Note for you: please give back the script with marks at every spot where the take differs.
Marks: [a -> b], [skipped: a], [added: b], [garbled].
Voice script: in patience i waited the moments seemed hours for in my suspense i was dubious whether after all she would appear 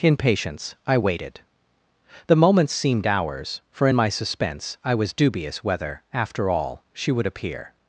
in patience i waited the moments seemed hours for in my suspense i was dubious whether after all she would appear